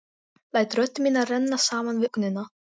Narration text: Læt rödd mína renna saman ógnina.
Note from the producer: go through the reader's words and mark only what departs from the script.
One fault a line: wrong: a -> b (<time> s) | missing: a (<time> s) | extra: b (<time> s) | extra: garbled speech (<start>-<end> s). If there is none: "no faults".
no faults